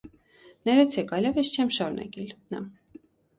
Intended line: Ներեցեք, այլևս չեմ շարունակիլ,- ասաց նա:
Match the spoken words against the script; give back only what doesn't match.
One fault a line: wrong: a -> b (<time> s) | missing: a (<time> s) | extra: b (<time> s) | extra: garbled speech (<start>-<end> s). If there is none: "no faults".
missing: ասաց (2.3 s)